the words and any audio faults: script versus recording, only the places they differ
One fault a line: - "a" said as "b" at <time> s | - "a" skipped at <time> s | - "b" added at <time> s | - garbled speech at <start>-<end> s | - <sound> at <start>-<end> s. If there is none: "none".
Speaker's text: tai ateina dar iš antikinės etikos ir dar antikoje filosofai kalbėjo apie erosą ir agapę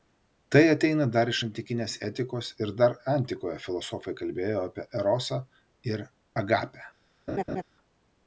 - laugh at 7.3-7.6 s